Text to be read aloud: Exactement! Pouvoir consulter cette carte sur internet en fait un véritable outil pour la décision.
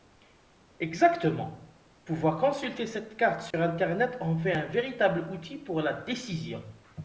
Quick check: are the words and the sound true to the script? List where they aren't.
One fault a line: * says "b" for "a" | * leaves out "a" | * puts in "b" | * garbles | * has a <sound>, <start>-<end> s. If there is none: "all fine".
* has a dropout, 3.5-3.5 s